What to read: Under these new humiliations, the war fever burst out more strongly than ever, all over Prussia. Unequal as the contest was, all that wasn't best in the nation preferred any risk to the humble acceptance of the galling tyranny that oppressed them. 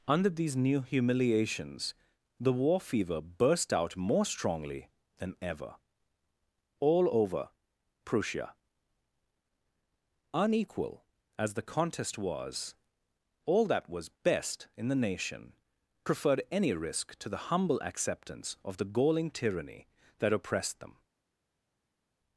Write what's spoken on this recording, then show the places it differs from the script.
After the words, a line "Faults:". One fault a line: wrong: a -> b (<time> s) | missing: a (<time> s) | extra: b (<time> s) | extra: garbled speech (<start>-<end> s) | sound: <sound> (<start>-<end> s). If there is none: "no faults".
Under these new humiliations, the war fever burst out more strongly than ever, all over Prussia. Unequal as the contest was, all that was best in the nation preferred any risk to the humble acceptance of the galling tyranny that oppressed them.
Faults:
wrong: wasn't -> was (13.9 s)